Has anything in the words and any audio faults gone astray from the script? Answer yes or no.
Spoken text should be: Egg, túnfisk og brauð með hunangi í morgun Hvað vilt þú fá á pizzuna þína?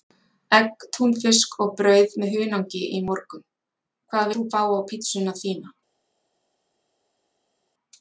yes